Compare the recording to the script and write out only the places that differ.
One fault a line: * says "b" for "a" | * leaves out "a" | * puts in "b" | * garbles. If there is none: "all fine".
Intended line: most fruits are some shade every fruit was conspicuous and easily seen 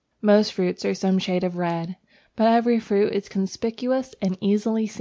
* puts in "of red but"
* says "is" for "was"